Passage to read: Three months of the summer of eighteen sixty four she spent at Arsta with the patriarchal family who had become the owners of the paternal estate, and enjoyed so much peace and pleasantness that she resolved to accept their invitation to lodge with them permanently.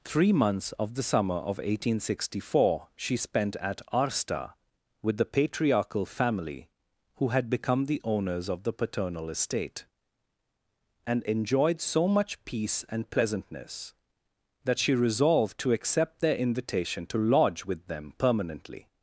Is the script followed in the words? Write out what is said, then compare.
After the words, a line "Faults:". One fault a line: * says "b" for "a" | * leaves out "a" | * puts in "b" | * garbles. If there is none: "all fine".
Three months of the summer of eighteen sixty four she spent at Arsta with the patriarchal family who had become the owners of the paternal estate, and enjoyed so much peace and pleasantness that she resolved to accept their invitation to lodge with them permanently.
Faults:
all fine